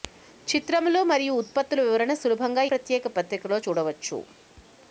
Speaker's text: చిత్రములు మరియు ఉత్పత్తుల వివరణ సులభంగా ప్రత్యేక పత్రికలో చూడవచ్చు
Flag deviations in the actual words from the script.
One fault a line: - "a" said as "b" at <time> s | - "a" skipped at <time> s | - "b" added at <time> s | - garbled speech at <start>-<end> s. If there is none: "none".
none